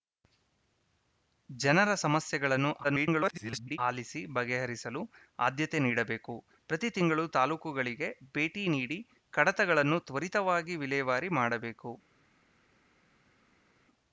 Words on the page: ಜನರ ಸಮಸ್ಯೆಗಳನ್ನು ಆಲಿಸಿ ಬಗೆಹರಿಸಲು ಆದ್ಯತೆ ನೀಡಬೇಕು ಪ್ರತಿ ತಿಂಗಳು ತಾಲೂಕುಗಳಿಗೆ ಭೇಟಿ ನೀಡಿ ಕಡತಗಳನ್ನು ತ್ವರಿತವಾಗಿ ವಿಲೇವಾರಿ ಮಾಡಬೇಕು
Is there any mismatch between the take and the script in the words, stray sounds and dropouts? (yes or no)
yes